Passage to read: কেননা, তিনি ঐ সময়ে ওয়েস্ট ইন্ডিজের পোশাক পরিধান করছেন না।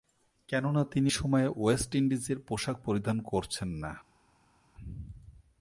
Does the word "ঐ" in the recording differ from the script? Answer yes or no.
yes